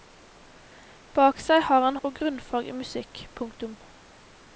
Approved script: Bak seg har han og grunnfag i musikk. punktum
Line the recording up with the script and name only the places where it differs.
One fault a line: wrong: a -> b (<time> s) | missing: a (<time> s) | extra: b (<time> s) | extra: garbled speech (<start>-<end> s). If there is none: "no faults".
no faults